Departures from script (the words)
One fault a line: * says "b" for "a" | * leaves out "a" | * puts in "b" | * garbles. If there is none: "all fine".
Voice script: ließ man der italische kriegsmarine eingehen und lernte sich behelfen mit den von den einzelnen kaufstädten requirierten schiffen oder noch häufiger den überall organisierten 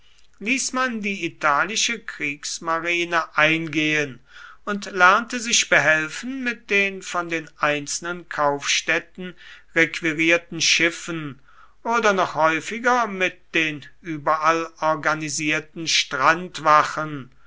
* says "die" for "der"
* puts in "mit"